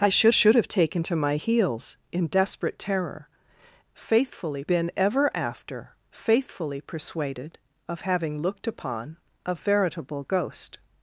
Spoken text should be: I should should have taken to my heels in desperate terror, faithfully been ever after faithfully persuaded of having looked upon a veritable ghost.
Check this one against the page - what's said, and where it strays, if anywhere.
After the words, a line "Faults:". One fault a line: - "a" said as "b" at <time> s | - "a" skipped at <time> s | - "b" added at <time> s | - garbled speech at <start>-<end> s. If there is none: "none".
I should should have taken to my heels in desperate terror, faithfully been ever after faithfully persuaded of having looked upon a veritable ghost.
Faults:
none